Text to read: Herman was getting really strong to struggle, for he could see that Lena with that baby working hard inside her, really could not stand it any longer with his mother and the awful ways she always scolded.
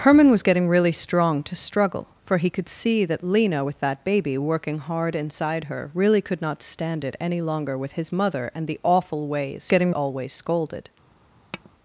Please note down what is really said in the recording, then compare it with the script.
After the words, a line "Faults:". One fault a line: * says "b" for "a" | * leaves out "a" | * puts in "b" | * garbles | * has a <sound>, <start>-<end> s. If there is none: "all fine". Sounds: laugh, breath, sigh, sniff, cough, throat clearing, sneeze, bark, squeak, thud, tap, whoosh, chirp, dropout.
Herman was getting really strong to struggle, for he could see that Lena with that baby working hard inside her, really could not stand it any longer with his mother and the awful ways getting always scolded.
Faults:
* says "getting" for "she"
* has a tap, 11.5-11.7 s